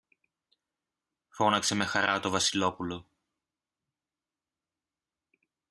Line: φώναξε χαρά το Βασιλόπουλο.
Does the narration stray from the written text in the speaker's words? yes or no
yes